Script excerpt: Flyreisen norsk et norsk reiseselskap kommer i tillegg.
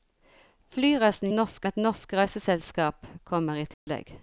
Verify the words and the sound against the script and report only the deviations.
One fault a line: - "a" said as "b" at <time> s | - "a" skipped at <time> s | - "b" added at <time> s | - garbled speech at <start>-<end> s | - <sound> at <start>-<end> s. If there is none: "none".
- dropout at 3.7-3.9 s